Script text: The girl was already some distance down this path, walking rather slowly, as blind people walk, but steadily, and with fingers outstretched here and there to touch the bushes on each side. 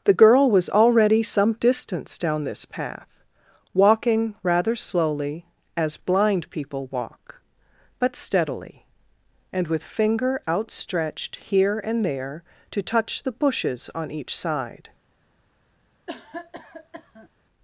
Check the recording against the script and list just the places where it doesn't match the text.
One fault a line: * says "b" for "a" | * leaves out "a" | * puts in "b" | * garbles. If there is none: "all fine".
* says "finger" for "fingers"